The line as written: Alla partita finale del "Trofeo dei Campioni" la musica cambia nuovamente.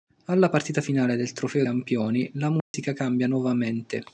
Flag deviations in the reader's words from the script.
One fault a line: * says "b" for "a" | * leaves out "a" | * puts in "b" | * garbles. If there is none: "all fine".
* leaves out "dei"